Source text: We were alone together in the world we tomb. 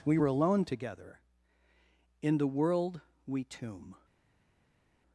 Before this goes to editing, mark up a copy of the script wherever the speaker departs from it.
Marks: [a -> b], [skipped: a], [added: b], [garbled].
We were alone together in the world we tomb.